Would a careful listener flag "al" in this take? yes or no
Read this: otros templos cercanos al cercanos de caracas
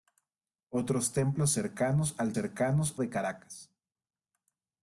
no